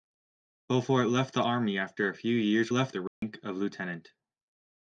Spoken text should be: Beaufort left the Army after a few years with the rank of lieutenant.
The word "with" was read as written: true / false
false